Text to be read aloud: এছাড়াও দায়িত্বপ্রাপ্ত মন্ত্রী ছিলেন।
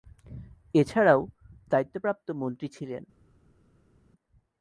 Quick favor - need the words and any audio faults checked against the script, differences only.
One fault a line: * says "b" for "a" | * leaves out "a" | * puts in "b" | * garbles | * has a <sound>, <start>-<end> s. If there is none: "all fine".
all fine